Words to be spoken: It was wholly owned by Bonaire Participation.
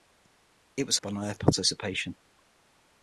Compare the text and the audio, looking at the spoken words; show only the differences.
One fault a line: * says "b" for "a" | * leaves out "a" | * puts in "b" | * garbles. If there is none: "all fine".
* leaves out "wholly owned by"